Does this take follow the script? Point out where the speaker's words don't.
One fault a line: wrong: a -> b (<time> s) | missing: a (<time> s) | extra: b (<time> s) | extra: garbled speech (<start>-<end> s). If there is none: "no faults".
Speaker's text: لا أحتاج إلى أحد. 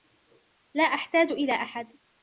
no faults